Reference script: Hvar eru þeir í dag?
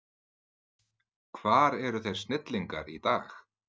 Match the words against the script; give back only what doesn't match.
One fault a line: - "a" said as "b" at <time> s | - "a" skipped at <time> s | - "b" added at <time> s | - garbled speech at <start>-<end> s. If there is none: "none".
- "snillingar" added at 2.2 s